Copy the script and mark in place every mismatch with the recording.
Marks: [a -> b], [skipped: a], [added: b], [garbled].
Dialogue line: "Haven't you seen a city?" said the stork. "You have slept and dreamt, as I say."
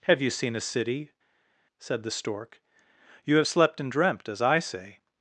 ["Haven't -> Have] you seen a city?" said the stork. "You have slept and dreamt, as I say."